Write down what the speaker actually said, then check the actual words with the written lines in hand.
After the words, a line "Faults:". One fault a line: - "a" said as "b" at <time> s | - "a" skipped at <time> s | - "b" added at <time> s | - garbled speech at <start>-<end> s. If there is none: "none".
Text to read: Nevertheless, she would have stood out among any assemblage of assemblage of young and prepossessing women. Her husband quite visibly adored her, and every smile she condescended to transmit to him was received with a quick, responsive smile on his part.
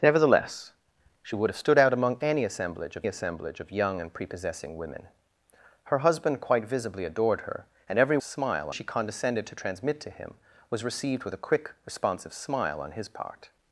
Nevertheless, she would have stood out among any assemblage of assemblage of young and prepossessing women. Her husband quite visibly adored her, and every smile she condescended to transmit to him was received with a quick, responsive smile on his part.
Faults:
none